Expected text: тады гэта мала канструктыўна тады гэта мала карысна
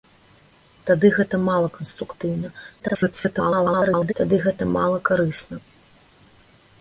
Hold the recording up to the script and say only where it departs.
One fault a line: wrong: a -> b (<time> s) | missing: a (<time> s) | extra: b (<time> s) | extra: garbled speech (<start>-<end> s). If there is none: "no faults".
extra: garbled speech (2.8-4.1 s)